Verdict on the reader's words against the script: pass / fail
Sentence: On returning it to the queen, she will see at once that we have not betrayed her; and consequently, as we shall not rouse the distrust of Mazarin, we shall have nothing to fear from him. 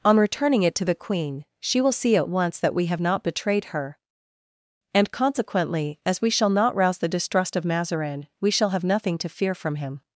pass